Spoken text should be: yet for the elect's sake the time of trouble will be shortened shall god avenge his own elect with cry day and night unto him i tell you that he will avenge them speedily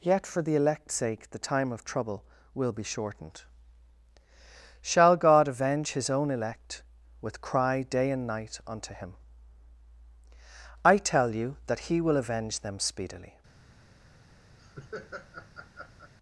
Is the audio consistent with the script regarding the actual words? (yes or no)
yes